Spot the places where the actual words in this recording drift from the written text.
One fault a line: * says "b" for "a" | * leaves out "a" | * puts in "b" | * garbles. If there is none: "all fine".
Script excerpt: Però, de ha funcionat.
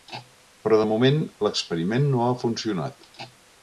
* puts in "moment l'experiment no"